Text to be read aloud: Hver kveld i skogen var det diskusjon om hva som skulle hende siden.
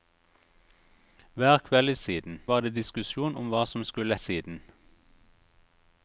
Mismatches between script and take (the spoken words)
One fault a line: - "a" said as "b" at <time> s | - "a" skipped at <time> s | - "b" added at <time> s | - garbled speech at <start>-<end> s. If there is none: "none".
- "skogen" said as "siden" at 1.9 s
- "hende" skipped at 4.2 s